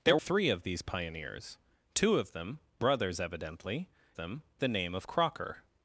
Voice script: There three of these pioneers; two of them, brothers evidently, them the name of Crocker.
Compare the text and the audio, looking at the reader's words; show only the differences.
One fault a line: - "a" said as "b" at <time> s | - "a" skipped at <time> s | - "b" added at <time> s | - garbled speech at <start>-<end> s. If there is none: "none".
none